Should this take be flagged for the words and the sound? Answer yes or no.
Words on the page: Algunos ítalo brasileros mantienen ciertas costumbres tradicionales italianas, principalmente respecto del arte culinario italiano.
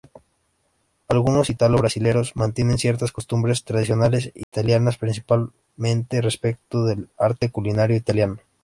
yes